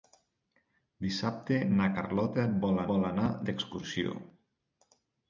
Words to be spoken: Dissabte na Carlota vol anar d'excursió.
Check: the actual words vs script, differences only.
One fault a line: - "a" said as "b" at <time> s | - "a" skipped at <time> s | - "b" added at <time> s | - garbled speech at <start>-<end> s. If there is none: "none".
- "vol" added at 2.9 s